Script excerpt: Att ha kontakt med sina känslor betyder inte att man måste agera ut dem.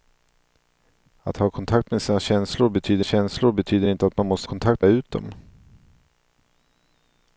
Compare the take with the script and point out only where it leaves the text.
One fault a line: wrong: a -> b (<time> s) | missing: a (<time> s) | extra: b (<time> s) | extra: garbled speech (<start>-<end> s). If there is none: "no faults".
extra: känslor betyder (3.0 s)
wrong: agera -> kontakt (4.4 s)